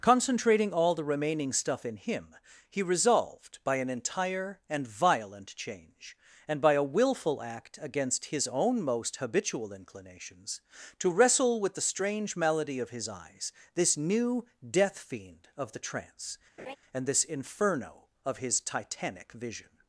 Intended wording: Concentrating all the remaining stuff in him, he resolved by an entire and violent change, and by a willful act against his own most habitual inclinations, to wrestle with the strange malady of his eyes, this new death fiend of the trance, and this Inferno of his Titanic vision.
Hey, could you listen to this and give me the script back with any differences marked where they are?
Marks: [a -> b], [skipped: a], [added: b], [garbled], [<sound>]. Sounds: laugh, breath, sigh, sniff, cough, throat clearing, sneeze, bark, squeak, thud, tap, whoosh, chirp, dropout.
Concentrating all the remaining stuff in him, he resolved by an entire and violent change, and by a willful act against his own most habitual inclinations, to wrestle with the strange malady of his eyes, this new death fiend of the trance, [laugh] and this Inferno of his Titanic vision.